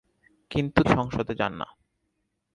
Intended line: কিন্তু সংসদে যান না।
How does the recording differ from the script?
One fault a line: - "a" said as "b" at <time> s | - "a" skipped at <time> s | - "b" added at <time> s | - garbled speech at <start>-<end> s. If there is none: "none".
none